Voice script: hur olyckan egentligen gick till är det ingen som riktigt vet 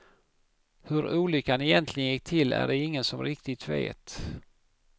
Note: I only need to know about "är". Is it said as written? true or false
true